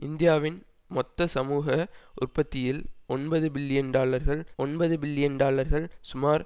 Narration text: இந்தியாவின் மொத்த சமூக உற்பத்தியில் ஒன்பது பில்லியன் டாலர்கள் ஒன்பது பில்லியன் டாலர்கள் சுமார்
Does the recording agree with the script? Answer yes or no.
yes